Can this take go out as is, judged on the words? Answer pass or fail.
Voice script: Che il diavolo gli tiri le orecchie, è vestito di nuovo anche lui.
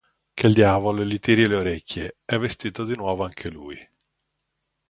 pass